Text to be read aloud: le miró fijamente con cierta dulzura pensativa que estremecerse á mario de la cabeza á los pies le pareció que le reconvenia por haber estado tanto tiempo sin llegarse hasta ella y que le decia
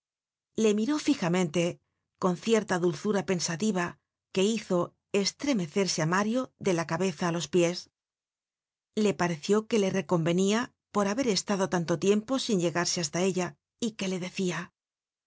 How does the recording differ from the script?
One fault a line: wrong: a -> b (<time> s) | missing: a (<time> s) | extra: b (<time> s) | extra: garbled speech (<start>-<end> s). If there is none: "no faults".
extra: hizo (4.5 s)